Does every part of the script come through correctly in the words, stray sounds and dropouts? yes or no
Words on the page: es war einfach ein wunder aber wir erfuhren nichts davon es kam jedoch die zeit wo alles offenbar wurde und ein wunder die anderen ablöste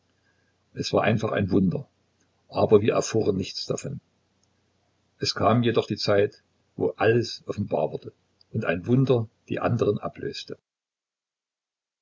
yes